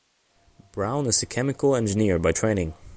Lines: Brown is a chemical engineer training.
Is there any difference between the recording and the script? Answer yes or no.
yes